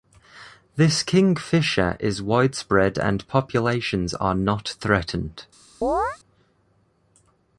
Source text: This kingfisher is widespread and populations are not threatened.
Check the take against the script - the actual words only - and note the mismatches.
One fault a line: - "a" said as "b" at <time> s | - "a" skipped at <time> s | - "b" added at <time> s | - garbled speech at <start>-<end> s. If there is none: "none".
none